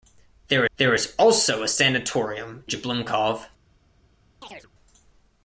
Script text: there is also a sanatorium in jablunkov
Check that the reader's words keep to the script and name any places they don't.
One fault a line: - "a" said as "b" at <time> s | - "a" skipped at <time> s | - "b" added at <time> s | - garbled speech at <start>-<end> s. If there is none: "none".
- "there" added at 0.8 s
- "in" skipped at 2.6 s